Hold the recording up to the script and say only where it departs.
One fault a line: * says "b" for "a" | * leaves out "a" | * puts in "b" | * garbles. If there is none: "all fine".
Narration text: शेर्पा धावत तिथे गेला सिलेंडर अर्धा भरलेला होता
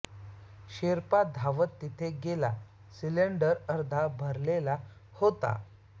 all fine